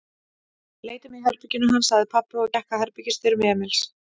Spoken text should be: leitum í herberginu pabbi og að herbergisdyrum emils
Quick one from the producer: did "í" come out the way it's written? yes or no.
yes